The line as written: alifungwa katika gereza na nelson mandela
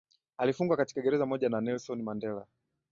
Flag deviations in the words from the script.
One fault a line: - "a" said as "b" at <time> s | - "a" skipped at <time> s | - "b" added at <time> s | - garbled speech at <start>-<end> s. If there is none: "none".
- "moja" added at 1.2 s